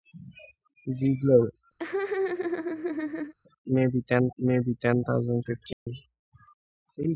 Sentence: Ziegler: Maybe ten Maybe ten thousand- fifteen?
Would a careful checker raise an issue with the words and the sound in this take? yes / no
yes